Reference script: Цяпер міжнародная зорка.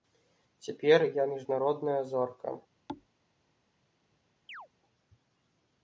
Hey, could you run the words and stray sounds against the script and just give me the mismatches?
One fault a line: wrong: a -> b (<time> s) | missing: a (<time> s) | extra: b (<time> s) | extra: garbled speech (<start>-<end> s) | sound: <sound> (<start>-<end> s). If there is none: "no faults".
extra: я (1.1 s)
sound: thud (2.9-3.1 s)
sound: chirp (4.5-4.7 s)